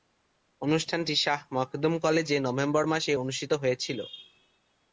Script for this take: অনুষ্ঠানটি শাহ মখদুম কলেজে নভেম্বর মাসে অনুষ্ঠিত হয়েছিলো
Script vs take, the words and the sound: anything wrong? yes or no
no